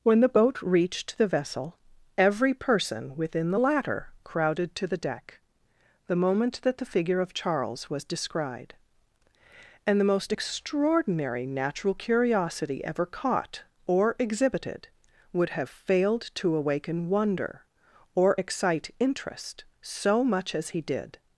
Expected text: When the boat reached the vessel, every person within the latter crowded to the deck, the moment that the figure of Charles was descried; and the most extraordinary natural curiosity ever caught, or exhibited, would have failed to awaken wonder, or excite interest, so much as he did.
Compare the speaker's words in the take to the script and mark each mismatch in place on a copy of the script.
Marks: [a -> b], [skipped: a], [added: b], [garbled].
When the boat reached the vessel, every person within the latter crowded to the deck, the moment that the figure of Charles was descried; and the most extraordinary natural curiosity ever caught, or exhibited, would have failed to awaken wonder, or excite interest, so much as he did.